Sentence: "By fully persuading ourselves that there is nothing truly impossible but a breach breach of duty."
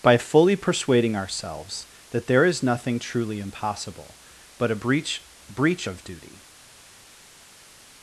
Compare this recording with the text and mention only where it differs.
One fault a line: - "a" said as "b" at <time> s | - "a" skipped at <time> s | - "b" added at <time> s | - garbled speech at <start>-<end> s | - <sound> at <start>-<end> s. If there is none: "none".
none